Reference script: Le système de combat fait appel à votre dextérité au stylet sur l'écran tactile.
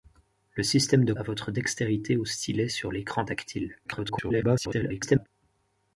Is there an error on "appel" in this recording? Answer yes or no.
yes